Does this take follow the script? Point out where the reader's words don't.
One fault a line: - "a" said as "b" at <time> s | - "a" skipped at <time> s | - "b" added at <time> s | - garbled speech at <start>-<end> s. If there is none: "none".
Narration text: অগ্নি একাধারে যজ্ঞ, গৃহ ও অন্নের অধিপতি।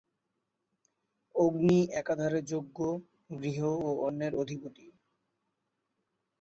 none